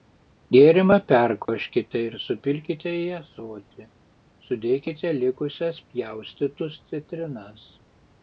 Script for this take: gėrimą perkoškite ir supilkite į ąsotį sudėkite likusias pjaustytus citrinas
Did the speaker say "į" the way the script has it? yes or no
yes